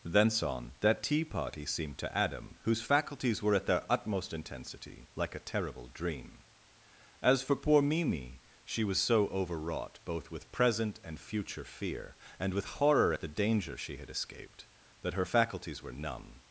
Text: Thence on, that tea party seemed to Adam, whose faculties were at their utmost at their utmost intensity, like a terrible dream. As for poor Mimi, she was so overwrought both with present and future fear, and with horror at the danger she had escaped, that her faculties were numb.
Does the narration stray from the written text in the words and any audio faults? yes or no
yes